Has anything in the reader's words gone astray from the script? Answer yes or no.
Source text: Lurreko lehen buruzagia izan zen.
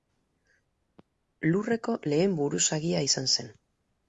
no